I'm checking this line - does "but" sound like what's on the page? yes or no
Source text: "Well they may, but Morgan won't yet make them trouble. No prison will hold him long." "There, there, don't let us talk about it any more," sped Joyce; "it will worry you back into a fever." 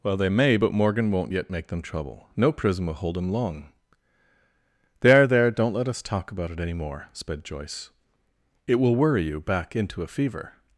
yes